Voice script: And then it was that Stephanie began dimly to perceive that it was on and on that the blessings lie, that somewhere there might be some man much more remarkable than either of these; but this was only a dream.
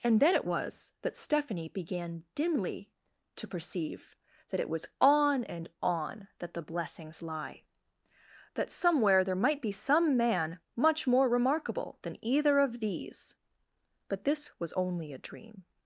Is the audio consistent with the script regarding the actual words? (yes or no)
yes